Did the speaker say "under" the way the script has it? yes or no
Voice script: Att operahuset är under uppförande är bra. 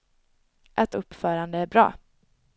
no